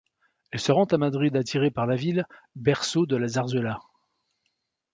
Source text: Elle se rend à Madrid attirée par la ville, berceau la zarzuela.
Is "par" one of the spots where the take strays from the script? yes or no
no